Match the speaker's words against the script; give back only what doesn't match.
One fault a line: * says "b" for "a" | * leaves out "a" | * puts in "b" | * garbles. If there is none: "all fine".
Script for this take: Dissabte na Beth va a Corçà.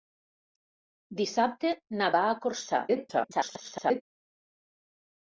* leaves out "Beth"
* garbles